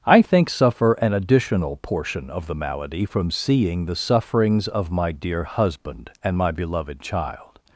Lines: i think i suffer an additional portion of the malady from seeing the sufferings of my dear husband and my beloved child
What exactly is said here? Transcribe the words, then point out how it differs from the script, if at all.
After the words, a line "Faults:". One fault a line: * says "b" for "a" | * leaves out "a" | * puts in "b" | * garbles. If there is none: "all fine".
i think suffer an additional portion of the malady from seeing the sufferings of my dear husband and my beloved child
Faults:
* leaves out "i"